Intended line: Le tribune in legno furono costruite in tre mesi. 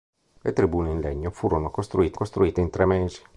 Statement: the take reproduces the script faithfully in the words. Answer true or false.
false